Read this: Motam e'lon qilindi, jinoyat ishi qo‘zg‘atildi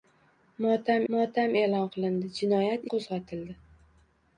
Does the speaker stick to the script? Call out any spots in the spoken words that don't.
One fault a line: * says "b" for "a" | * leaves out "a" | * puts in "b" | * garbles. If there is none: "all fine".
* puts in "motam"
* leaves out "ishi"